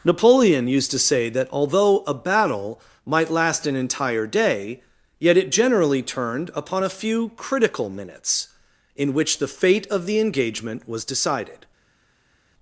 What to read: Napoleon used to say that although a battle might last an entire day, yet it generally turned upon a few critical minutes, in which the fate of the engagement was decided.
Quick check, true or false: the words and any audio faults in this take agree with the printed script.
true